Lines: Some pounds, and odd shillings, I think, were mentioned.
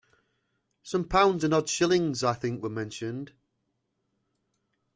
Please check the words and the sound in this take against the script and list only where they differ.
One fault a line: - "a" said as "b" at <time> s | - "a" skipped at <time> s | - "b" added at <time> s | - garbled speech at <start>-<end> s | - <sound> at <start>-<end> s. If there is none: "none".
none